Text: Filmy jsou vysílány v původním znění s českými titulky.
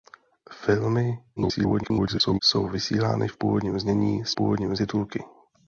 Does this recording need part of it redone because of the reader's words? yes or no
yes